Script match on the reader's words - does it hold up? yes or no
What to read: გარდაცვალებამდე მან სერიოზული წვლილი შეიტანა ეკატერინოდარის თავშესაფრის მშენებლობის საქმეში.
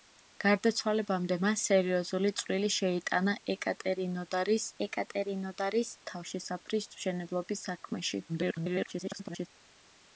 no